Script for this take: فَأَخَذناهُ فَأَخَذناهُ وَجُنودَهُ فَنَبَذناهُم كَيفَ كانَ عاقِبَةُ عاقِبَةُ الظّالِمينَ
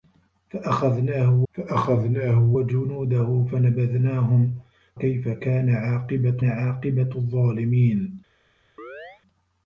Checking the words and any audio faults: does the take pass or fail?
fail